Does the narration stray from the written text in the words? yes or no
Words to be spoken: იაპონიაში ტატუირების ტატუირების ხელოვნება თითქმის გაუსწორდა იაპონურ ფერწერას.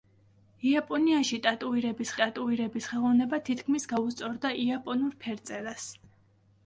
no